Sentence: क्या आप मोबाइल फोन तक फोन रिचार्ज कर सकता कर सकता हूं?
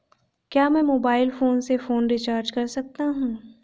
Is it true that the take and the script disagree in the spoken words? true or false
true